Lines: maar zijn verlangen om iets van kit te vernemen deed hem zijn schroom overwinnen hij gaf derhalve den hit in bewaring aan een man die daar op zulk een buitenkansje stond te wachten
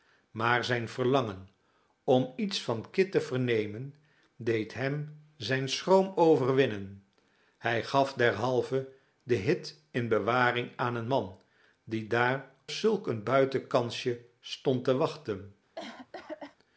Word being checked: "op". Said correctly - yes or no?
no